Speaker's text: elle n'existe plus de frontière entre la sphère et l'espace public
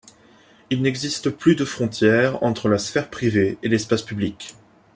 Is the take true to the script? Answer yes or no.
no